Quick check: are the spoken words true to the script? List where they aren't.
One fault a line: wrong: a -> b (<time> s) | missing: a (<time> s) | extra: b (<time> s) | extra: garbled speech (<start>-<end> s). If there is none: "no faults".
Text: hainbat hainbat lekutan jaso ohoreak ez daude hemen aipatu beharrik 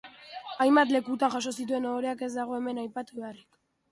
missing: hainbat (0.9 s)
extra: zituen (1.6 s)
wrong: daude -> dago (2.4 s)